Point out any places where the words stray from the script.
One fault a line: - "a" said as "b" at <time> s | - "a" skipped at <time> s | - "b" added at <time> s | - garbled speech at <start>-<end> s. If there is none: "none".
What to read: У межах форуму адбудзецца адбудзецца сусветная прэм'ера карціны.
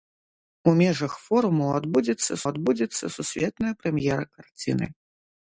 none